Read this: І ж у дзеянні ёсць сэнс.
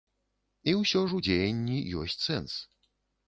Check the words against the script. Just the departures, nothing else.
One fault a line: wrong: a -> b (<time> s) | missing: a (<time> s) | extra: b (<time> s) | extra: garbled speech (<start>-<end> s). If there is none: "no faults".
extra: ўсё (0.8 s)